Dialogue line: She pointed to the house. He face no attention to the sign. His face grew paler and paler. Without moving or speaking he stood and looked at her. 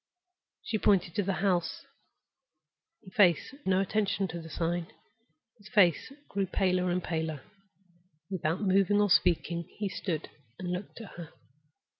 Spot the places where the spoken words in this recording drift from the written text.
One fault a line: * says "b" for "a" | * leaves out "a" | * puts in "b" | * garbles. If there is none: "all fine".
all fine